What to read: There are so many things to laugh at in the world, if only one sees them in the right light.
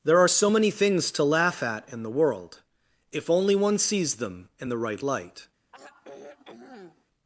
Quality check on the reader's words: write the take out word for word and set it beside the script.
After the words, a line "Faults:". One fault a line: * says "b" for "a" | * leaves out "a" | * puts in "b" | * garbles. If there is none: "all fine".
There are so many things to laugh at in the world, if only one sees them in the right light.
Faults:
all fine